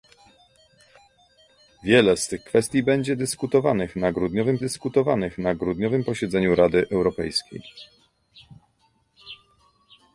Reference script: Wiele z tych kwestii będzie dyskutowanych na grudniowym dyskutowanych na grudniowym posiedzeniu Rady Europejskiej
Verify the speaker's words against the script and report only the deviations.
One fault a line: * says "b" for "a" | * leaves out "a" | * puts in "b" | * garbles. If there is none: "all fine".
all fine